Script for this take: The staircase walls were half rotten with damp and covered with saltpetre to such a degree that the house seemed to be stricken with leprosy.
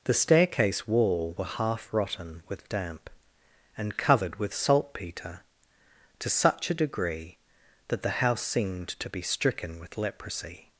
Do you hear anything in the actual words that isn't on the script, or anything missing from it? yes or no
yes